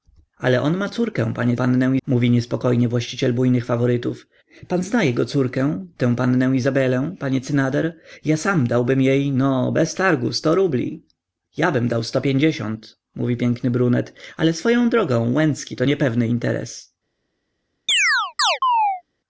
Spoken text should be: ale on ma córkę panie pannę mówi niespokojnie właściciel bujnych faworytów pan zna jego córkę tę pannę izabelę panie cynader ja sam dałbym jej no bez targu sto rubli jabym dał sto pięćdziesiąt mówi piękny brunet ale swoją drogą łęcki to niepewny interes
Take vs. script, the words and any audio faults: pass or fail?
fail